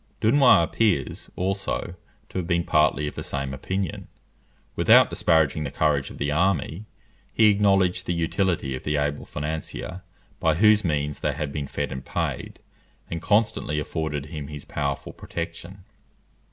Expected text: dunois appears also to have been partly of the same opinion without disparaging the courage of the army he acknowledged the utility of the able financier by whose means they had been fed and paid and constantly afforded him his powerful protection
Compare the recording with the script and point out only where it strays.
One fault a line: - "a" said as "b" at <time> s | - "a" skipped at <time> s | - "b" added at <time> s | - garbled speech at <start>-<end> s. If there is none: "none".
none